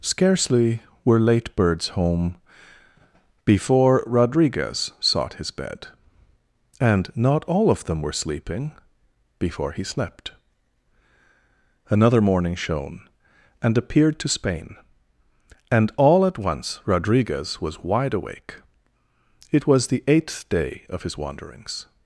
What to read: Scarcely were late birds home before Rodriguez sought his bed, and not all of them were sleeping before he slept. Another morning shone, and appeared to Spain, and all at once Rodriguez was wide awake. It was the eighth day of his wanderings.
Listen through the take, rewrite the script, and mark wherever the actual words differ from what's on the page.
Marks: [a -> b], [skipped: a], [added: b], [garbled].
Scarcely were late birds home before Rodriguez sought his bed, and not all of them were sleeping before he slept. Another morning shone, and appeared to Spain, and all at once Rodriguez was wide awake. It was the eighth day of his wanderings.